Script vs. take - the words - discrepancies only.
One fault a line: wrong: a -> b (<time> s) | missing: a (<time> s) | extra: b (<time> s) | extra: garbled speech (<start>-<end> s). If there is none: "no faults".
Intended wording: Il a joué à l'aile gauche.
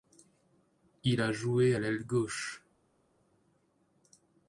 no faults